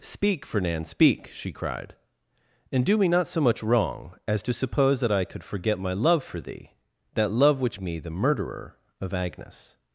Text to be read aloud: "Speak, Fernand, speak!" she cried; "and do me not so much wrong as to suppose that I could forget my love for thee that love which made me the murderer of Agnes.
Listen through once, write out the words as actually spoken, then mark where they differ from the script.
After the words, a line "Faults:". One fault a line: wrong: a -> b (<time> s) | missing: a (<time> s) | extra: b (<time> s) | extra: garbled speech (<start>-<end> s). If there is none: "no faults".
"Speak, Fernand, speak!" she cried; "and do me not so much wrong as to suppose that I could forget my love for thee that love which me the murderer of Agnes.
Faults:
missing: made (7.8 s)